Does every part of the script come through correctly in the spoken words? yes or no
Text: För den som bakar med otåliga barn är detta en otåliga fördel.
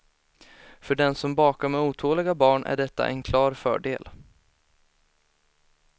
no